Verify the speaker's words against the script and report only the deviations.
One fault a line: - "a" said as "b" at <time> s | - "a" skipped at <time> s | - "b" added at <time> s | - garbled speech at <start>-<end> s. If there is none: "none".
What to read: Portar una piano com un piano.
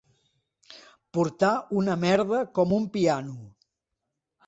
- "piano" said as "merda" at 2.1 s